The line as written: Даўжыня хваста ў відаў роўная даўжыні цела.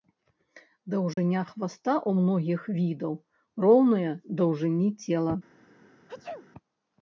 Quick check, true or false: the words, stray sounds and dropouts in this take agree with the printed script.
false